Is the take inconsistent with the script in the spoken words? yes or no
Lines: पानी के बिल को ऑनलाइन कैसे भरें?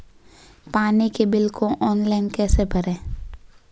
no